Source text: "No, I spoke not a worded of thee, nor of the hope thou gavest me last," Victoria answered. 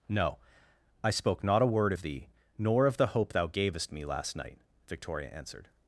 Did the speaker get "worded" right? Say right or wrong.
wrong